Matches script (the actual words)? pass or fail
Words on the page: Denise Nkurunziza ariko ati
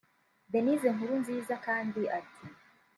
fail